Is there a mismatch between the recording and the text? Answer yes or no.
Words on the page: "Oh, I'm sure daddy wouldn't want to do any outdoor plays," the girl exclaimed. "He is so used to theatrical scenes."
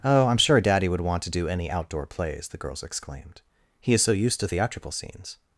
yes